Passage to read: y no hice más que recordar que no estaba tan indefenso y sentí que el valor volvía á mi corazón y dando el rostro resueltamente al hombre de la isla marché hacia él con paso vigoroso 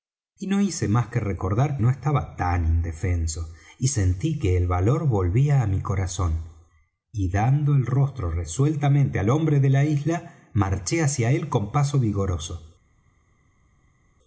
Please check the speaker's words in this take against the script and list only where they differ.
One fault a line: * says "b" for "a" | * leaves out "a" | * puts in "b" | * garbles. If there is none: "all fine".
* leaves out "que"